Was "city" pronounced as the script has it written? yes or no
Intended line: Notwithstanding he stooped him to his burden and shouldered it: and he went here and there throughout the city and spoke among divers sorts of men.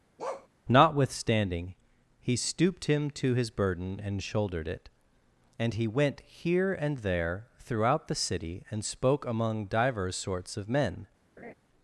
yes